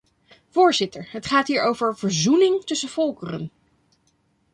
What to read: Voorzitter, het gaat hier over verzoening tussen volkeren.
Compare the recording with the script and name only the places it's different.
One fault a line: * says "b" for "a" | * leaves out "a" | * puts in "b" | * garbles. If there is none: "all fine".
all fine